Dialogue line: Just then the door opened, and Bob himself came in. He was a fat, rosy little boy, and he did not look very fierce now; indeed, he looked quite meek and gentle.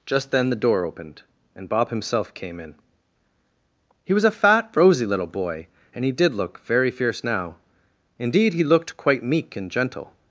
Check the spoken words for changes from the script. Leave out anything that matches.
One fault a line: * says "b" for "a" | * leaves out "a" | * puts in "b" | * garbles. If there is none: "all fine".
* leaves out "not"